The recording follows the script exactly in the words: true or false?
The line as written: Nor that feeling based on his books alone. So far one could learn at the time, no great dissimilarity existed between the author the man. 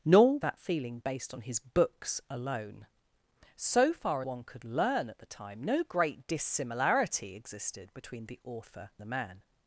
true